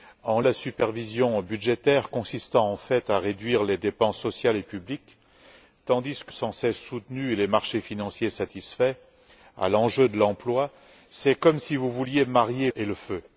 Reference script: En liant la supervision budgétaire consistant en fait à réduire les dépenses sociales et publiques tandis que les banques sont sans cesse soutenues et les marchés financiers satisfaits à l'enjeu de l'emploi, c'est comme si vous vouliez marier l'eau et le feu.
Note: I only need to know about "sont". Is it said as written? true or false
false